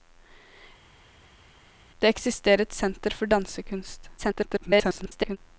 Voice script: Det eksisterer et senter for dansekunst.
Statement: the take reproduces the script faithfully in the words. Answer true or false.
false